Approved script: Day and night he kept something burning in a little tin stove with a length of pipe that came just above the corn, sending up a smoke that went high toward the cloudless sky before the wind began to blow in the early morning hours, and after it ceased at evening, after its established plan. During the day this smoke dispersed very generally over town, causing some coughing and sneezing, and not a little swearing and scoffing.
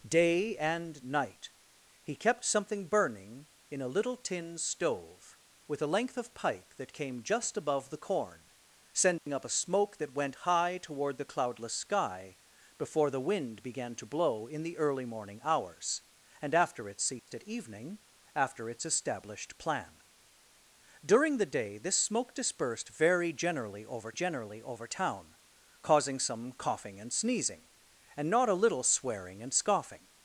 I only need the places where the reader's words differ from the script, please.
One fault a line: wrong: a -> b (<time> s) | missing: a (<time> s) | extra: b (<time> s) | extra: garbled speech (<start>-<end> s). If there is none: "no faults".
extra: generally over (24.1 s)